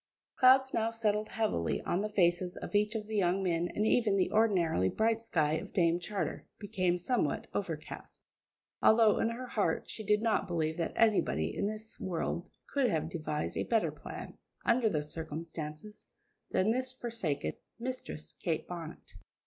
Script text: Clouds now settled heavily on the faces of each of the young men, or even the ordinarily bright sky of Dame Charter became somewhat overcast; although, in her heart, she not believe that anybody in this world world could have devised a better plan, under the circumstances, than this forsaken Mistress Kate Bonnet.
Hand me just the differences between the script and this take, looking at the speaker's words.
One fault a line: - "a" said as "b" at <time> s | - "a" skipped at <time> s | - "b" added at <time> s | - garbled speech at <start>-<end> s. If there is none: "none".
- "or" said as "and" at 3.8 s
- "did" added at 10.0 s
- "world" skipped at 12.5 s